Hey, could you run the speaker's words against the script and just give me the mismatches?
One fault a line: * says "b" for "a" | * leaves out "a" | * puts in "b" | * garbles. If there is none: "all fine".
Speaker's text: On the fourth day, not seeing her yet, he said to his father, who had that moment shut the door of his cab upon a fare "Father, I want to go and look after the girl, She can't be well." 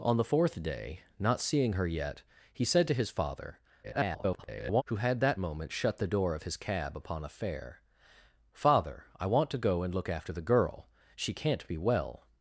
* garbles